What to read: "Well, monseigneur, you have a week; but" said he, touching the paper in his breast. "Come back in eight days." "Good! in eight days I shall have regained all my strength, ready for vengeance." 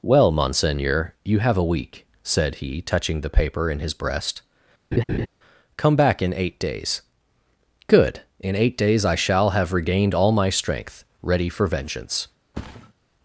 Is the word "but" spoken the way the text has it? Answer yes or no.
no